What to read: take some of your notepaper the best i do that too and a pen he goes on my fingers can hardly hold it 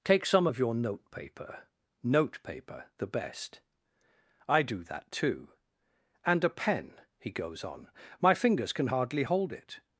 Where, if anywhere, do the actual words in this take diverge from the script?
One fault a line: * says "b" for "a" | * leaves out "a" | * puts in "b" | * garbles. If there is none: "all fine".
* puts in "notepaper"